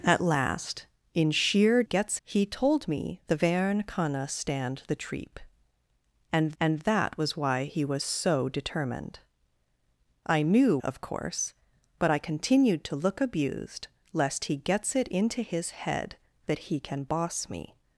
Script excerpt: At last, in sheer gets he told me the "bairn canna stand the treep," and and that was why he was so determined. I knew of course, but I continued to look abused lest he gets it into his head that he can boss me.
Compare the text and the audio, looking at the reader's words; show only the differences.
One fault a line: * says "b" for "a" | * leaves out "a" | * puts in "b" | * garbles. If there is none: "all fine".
all fine